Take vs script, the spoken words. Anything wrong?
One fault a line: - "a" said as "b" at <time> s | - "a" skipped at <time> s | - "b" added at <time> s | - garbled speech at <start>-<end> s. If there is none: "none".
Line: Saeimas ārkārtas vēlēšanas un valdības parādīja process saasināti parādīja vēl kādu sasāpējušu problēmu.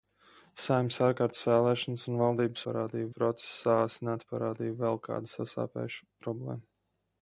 none